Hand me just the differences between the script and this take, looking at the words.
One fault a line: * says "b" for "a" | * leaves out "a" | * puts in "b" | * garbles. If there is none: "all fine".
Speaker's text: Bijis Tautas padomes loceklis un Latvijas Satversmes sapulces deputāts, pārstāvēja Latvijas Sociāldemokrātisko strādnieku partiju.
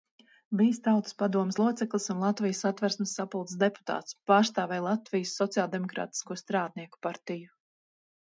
all fine